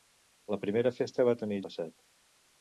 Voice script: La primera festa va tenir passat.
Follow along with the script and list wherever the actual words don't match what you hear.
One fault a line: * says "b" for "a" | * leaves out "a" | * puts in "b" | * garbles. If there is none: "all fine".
all fine